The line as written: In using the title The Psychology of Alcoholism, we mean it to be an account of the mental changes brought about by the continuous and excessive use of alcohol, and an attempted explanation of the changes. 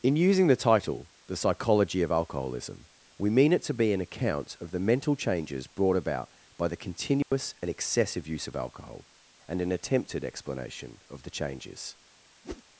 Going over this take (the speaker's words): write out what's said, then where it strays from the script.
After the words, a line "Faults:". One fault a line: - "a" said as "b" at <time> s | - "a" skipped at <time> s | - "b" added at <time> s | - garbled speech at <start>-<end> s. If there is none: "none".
In using the title The Psychology of Alcoholism, we mean it to be an account of the mental changes brought about by the continuous and excessive use of alcohol, and an attempted explanation of the changes.
Faults:
none